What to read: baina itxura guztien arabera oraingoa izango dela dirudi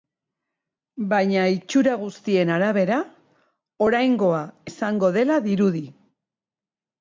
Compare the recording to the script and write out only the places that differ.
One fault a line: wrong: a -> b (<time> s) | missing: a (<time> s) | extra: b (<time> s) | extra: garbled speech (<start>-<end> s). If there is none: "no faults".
no faults